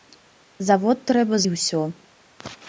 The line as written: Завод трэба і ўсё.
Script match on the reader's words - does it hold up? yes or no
yes